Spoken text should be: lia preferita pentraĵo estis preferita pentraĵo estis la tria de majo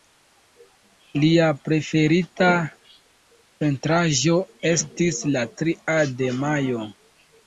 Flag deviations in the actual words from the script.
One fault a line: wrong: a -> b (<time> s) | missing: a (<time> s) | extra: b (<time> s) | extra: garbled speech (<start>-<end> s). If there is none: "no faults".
missing: preferita pentraĵo estis (5.2 s)